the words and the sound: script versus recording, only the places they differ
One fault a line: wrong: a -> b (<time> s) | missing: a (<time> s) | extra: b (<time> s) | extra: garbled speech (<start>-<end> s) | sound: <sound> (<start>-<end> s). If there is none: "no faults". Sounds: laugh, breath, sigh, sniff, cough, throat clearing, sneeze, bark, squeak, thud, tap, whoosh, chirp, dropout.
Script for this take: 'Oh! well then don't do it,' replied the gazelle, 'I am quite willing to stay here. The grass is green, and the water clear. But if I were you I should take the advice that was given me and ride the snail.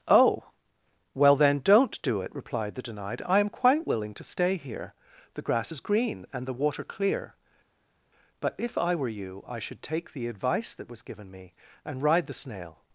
wrong: gazelle -> denied (2.8 s)